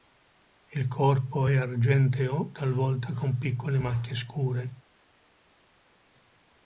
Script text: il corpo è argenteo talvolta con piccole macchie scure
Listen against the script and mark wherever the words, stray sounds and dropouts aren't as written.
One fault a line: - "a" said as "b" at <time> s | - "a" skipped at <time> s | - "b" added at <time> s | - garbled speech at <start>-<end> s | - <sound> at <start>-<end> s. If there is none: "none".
none